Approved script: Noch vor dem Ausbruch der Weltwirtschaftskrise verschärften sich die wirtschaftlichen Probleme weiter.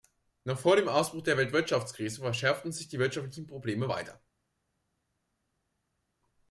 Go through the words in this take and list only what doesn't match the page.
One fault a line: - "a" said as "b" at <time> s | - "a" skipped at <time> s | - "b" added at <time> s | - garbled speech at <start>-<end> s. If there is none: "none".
none